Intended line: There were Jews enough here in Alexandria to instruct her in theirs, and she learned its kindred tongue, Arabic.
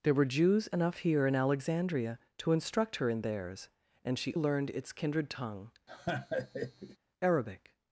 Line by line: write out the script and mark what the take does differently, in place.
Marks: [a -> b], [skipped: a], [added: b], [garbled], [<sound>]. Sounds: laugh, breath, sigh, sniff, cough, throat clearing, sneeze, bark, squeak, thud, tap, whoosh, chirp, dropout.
There were Jews enough here in Alexandria to instruct her in theirs, and she learned its kindred tongue, [laugh] Arabic.